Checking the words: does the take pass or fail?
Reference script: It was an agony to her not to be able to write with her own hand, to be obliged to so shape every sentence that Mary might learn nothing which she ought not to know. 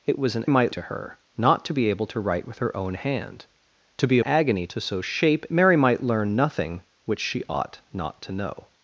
fail